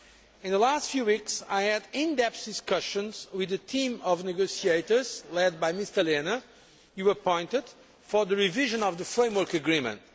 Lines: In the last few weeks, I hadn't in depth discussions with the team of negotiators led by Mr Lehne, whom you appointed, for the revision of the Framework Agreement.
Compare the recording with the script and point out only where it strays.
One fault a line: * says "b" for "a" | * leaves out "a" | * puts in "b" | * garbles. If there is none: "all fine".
* says "had" for "hadn't"